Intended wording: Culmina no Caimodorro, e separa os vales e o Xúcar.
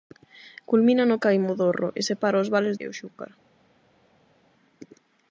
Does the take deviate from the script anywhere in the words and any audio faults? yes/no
no